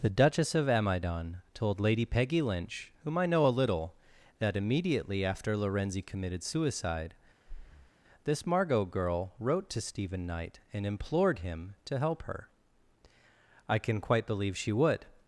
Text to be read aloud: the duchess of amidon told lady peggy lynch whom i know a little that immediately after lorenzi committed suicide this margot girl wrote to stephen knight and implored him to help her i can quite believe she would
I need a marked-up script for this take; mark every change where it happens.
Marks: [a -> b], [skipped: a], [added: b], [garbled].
the duchess of amidon told lady peggy lynch whom i know a little that immediately after lorenzi committed suicide this margot girl wrote to stephen knight and implored him to help her i can quite believe she would